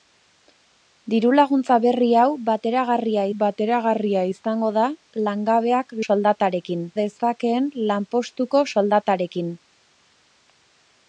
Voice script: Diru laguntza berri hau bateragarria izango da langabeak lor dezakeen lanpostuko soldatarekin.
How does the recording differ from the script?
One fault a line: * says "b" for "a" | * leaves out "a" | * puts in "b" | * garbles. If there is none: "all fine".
* puts in "bateragarria"
* says "soldatarekin" for "lor"